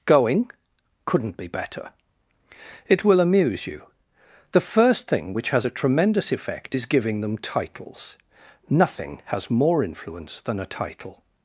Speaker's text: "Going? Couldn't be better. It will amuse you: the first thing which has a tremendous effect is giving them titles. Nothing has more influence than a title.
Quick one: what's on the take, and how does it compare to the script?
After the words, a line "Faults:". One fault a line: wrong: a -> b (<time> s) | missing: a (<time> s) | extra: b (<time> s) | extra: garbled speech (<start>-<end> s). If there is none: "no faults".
"Going? Couldn't be better. It will amuse you: the first thing which has a tremendous effect is giving them titles. Nothing has more influence than a title.
Faults:
no faults